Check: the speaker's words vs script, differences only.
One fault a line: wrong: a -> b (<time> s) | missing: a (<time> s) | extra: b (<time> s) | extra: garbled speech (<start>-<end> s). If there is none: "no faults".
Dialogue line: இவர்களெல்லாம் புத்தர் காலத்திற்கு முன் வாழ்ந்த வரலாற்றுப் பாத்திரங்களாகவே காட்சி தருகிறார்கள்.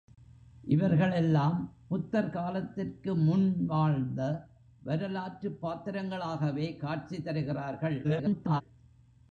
extra: garbled speech (8.0-8.6 s)